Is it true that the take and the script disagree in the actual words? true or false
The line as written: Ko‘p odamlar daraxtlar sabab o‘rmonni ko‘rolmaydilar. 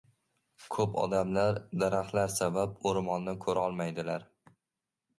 false